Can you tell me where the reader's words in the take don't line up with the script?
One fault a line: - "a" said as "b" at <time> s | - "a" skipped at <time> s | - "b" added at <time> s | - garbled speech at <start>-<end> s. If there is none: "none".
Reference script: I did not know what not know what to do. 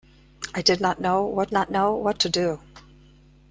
none